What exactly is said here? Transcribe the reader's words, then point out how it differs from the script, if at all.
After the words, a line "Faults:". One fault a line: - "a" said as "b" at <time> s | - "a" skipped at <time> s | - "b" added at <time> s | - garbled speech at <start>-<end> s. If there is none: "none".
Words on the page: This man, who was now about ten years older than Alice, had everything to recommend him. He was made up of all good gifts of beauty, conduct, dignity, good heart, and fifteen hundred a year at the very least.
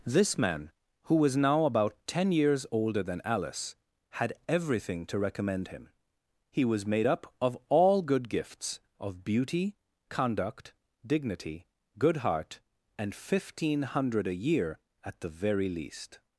This man, who was now about ten years older than Alice, had everything to recommend him. He was made up of all good gifts of beauty, conduct, dignity, good heart, and fifteen hundred a year at the very least.
Faults:
none